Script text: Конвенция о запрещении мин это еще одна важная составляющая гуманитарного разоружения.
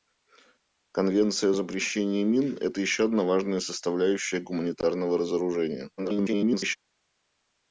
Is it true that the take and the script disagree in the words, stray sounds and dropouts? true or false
true